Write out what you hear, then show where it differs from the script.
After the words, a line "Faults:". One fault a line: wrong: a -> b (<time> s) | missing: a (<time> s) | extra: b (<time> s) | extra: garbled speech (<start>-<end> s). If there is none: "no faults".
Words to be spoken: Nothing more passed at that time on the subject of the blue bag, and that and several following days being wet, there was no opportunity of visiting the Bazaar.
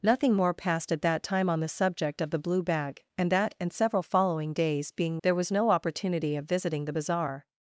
Nothing more passed at that time on the subject of the blue bag, and that and several following days being there was no opportunity of visiting the Bazaar.
Faults:
missing: wet (5.2 s)